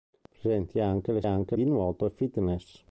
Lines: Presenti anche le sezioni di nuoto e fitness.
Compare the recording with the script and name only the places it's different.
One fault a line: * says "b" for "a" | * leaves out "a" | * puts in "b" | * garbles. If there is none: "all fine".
* says "anche" for "sezioni"